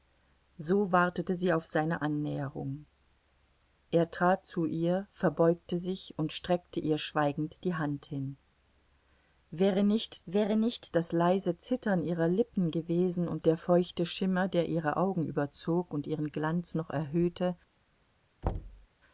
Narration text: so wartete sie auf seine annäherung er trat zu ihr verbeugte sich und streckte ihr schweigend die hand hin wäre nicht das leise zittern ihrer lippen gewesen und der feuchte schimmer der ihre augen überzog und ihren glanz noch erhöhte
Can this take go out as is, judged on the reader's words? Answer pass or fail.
fail